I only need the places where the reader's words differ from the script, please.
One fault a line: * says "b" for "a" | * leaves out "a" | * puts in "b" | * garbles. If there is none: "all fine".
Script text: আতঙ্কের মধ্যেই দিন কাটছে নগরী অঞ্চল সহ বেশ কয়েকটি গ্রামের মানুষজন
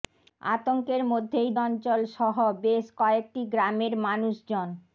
* leaves out "দিন কাটছে নগরী"